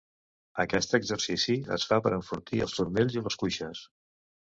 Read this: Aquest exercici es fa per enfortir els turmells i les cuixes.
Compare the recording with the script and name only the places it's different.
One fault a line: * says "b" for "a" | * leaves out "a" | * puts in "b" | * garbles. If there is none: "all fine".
all fine